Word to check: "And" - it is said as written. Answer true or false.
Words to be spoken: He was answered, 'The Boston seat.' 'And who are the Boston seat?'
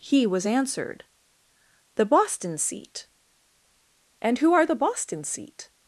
true